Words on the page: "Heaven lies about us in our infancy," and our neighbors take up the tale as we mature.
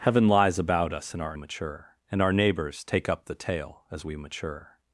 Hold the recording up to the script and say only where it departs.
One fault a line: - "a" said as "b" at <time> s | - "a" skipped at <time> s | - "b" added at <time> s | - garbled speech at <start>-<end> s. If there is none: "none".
- "infancy" said as "mature" at 1.4 s